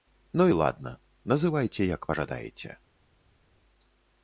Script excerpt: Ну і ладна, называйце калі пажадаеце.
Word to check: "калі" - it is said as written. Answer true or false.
false